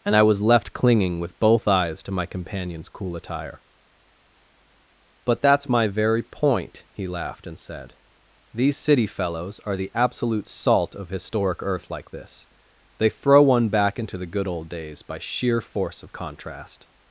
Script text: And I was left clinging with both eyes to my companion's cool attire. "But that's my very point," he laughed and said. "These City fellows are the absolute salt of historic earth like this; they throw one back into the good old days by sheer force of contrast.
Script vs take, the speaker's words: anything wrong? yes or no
no